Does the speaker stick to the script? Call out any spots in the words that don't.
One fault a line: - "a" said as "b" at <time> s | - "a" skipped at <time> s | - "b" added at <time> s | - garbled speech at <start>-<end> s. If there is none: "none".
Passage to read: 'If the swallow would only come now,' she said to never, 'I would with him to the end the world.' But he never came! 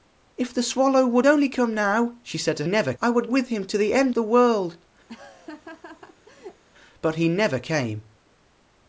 none